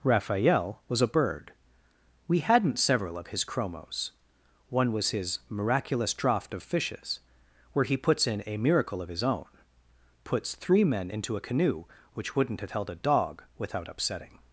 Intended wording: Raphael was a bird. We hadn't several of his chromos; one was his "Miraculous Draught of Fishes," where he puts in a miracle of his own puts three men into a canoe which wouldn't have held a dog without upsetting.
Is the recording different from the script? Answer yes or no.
no